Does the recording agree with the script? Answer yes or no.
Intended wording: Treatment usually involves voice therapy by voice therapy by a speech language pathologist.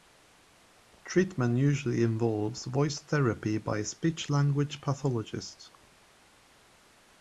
no